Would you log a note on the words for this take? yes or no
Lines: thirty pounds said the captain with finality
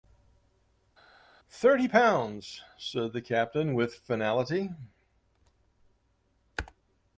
no